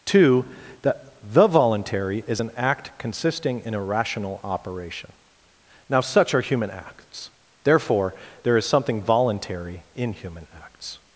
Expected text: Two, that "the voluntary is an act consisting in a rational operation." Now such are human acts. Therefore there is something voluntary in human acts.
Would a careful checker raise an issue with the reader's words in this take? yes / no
no